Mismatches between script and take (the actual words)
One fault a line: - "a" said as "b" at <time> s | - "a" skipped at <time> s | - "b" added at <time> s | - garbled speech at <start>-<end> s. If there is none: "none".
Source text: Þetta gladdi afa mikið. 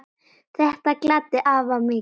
none